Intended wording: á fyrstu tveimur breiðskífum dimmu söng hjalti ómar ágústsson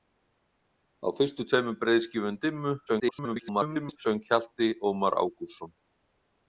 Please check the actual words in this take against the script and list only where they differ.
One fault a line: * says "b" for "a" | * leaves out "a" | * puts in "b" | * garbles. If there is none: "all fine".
* garbles